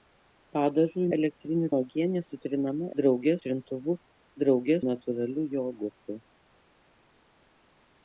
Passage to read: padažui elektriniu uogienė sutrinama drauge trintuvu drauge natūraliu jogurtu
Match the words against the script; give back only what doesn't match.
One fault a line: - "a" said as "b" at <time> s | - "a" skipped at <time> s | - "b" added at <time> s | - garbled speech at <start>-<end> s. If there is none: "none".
none